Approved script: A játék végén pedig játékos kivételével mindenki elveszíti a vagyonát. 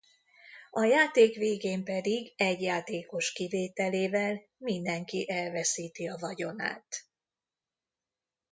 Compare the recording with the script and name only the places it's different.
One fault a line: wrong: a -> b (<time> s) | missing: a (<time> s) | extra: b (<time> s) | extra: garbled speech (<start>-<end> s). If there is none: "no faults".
extra: egy (2.4 s)